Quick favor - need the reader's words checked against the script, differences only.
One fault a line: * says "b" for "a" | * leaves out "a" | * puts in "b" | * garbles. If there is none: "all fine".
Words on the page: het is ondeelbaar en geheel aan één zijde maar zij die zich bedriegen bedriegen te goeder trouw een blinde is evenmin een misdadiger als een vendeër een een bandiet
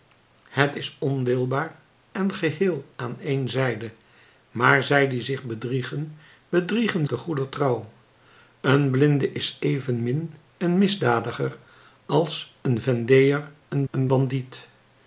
all fine